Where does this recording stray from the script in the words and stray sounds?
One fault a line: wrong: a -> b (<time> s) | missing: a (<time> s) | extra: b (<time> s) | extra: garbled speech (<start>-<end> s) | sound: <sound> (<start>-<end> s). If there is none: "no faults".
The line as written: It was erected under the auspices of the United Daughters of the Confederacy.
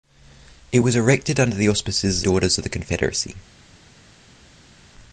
missing: of the United (2.2 s)